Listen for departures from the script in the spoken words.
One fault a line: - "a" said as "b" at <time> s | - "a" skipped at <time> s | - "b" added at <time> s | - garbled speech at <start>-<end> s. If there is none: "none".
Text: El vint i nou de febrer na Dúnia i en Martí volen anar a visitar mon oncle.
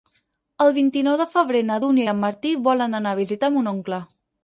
none